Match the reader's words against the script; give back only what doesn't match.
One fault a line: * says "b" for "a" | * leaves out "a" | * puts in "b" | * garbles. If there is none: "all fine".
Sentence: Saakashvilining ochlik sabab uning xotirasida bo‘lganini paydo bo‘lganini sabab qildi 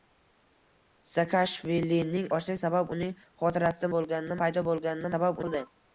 all fine